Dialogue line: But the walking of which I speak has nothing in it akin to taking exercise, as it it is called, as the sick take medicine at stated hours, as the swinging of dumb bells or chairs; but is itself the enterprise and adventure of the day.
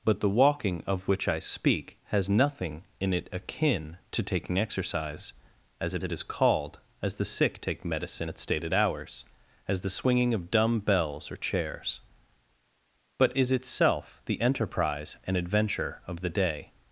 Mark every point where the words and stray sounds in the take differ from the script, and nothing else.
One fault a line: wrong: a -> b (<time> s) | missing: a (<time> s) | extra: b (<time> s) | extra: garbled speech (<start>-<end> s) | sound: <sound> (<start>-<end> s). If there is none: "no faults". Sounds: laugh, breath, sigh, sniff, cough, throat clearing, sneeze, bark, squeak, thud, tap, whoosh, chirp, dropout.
no faults